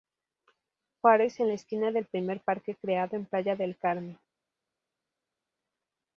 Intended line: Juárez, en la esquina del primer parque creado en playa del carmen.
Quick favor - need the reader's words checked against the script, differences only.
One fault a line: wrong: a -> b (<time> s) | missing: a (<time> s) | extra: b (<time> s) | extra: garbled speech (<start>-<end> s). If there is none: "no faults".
no faults